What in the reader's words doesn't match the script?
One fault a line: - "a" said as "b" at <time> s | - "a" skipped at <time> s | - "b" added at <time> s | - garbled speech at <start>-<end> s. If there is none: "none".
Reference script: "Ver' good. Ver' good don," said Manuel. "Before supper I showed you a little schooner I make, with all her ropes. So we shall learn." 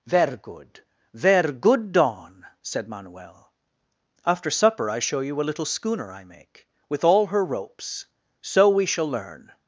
- "Before" said as "After" at 4.2 s
- "showed" said as "show" at 5.0 s